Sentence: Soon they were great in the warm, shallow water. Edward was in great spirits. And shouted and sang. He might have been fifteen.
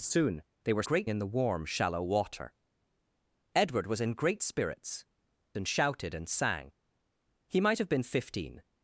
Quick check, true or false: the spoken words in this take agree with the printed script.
true